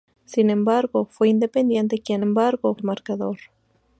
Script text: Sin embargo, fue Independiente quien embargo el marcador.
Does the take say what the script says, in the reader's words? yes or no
yes